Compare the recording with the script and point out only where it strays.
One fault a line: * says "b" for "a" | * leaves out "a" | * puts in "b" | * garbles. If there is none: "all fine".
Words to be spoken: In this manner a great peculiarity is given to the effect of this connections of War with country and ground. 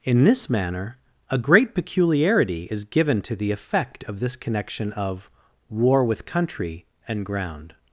* says "connection" for "connections"